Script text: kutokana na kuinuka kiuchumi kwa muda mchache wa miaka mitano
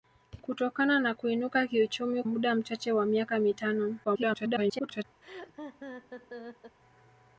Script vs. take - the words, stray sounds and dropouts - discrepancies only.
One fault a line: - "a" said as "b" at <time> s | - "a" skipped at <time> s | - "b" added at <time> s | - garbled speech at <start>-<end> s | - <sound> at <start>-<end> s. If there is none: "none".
- "kwa" skipped at 2.2 s
- garbled speech at 4.0-5.0 s
- laugh at 5.2-6.8 s